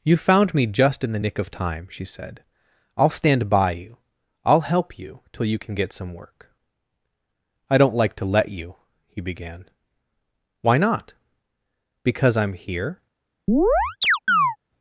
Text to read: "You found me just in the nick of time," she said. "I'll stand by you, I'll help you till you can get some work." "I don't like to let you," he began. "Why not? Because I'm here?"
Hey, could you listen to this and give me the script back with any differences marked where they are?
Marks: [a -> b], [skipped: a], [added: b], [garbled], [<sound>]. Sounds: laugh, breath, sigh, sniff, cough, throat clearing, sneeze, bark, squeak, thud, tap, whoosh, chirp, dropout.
"You found me just in the nick of time," she said. "I'll stand by you, I'll help you till you can get some work." "I don't like to let you," he began. "Why not? Because I'm here?" [chirp]